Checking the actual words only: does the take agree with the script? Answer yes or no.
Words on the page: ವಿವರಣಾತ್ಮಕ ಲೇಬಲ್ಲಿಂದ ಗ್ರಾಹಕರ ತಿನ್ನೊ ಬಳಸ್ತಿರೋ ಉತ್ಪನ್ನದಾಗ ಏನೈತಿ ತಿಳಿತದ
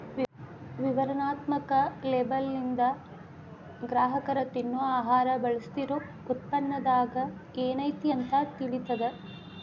no